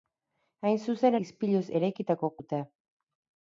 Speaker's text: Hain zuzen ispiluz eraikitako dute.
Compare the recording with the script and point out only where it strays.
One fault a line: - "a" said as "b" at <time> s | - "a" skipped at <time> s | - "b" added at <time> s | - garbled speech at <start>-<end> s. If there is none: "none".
none